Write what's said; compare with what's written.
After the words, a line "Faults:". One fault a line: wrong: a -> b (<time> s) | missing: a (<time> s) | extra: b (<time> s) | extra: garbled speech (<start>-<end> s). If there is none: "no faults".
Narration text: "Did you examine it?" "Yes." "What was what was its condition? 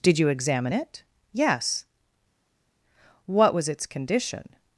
"Did you examine it?" "Yes." "What was its condition?
Faults:
missing: what was (3.7 s)